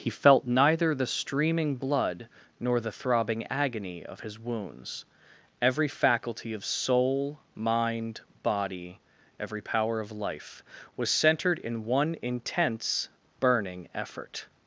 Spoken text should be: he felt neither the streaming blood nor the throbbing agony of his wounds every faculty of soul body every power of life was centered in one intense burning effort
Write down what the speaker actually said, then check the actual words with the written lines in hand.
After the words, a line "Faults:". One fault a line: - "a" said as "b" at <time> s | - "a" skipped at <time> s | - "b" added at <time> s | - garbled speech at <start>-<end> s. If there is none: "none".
he felt neither the streaming blood nor the throbbing agony of his wounds every faculty of soul mind body every power of life was centered in one intense burning effort
Faults:
- "mind" added at 7.6 s